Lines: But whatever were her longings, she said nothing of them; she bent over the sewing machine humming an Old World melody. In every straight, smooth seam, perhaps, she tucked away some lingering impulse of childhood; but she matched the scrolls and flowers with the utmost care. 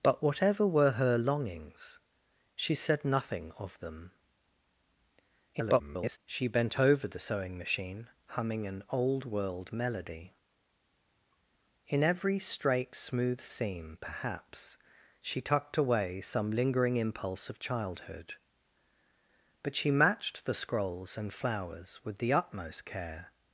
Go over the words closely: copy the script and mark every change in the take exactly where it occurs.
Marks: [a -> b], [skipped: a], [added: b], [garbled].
But whatever were her longings, she said nothing of them; [garbled] she bent over the sewing machine humming an Old World melody. In every straight, smooth seam, perhaps, she tucked away some lingering impulse of childhood; but she matched the scrolls and flowers with the utmost care.